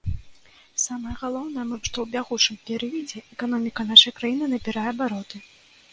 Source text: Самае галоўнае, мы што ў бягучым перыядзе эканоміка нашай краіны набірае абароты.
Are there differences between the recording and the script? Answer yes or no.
no